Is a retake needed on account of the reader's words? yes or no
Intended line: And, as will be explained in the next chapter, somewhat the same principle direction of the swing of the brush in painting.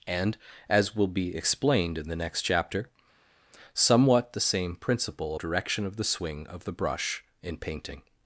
no